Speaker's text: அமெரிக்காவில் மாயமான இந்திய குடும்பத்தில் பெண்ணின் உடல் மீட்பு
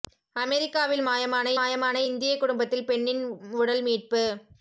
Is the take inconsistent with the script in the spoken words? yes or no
yes